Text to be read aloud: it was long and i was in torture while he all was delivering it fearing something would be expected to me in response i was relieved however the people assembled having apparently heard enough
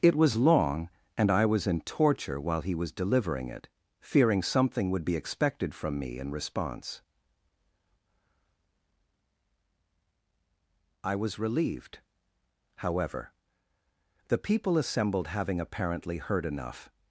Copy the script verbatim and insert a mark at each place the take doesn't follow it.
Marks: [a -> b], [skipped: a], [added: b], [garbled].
it was long and i was in torture while he [skipped: all] was delivering it fearing something would be expected [to -> from] me in response i was relieved however the people assembled having apparently heard enough